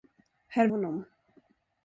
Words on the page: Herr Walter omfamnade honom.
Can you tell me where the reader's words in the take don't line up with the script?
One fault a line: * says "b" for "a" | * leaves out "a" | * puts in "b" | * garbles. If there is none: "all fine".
* leaves out "Walter omfamnade"